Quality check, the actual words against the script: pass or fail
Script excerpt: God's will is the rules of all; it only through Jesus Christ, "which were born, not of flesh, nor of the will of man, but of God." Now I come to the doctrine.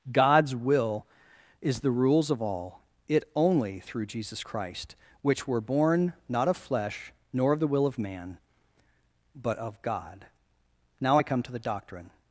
pass